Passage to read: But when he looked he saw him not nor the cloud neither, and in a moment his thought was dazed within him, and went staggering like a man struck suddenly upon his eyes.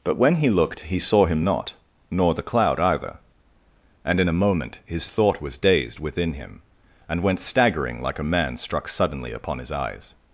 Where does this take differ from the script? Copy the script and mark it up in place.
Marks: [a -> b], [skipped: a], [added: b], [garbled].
But when he looked he saw him not nor the cloud [neither, -> either] and in a moment his thought was dazed within him, and went staggering like a man struck suddenly upon his eyes.